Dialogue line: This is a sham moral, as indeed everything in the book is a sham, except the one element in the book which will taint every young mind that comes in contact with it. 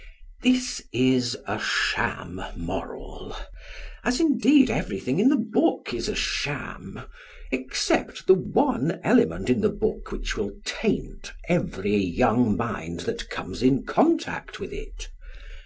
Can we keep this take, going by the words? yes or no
yes